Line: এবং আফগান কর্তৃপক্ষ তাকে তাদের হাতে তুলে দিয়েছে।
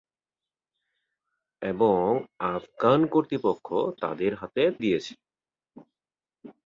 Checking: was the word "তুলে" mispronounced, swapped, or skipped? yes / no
yes